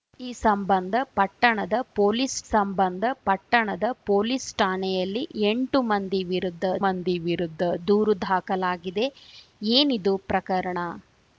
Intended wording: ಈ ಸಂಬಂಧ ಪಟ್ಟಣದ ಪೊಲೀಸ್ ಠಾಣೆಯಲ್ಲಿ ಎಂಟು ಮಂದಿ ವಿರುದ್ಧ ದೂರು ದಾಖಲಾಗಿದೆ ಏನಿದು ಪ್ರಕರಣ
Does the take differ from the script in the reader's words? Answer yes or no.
yes